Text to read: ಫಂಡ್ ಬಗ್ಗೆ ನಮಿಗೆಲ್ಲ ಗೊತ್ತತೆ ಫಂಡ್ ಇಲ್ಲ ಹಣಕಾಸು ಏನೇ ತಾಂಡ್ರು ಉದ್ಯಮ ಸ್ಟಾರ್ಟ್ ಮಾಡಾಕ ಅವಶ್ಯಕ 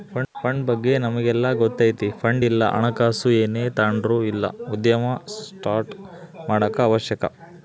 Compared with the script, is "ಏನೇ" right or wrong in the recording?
right